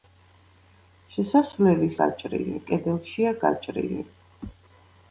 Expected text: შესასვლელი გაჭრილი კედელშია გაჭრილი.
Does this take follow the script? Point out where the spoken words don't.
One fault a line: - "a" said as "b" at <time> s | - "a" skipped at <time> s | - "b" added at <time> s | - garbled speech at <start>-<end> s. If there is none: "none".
none